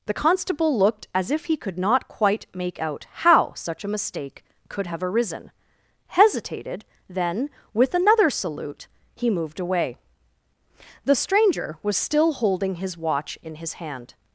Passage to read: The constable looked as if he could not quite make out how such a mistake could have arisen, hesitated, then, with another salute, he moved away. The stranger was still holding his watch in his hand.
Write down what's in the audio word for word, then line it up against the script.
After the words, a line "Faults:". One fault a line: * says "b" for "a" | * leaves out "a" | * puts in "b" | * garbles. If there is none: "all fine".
The constable looked as if he could not quite make out how such a mistake could have arisen, hesitated, then, with another salute, he moved away. The stranger was still holding his watch in his hand.
Faults:
all fine